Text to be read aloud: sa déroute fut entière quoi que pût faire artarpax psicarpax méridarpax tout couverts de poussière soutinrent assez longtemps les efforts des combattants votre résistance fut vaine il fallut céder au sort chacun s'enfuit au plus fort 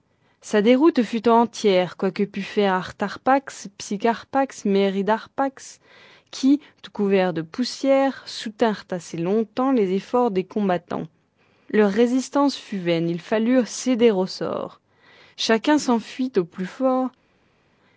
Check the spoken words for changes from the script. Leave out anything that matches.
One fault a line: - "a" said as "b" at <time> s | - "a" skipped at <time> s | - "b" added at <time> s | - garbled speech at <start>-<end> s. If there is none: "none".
- "qui" added at 6.3 s
- "votre" said as "leur" at 11.7 s